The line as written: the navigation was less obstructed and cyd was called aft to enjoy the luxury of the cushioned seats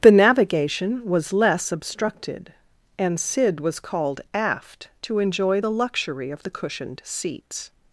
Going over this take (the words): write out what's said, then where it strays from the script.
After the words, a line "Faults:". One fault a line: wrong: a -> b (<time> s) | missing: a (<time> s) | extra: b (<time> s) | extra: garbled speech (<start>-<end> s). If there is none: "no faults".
the navigation was less obstructed and cyd was called aft to enjoy the luxury of the cushioned seats
Faults:
no faults